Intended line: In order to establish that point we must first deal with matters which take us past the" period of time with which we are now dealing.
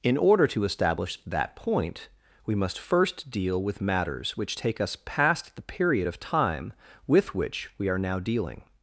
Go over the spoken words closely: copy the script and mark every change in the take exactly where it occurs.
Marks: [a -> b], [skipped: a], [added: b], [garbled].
In order to establish that point we must first deal with matters which take us past the" period of time with which we are now dealing.